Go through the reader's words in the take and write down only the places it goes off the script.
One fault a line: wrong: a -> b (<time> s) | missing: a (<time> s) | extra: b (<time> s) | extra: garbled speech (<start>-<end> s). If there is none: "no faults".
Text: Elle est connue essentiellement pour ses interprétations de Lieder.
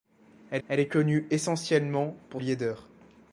extra: elle (0.7 s)
missing: ses interprétations de (2.4 s)